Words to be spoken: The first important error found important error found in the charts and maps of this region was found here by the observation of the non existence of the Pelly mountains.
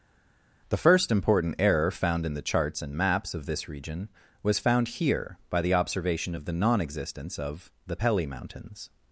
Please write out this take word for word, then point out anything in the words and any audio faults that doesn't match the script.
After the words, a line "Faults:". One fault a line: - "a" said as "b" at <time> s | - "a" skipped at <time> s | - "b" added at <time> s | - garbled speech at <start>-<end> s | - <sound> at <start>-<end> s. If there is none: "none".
The first important error found in the charts and maps of this region was found here by the observation of the non existence of the Pelly mountains.
Faults:
- "important error found" skipped at 2.2 s